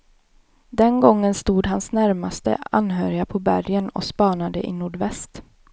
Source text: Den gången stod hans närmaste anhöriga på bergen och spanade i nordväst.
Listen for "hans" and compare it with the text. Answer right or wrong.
right